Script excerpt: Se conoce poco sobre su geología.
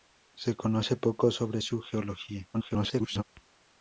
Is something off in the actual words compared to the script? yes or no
yes